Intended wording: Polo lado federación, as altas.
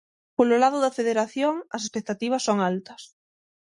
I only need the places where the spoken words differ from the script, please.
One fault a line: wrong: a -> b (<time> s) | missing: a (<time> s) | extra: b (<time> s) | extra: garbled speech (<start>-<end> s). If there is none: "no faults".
extra: da (0.8 s)
extra: expectativas son (1.9 s)